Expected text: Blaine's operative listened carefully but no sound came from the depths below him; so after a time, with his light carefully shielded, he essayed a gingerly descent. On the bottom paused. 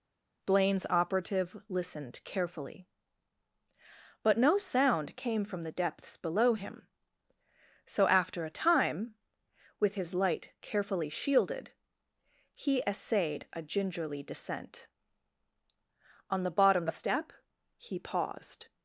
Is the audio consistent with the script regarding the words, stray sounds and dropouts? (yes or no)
no